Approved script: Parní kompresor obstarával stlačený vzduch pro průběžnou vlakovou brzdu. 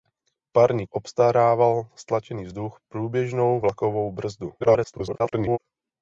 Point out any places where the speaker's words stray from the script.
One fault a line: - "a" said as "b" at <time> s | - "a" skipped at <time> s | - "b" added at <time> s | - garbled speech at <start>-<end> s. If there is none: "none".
- "kompresor" skipped at 0.8 s
- "pro" skipped at 2.8 s
- garbled speech at 4.6-5.6 s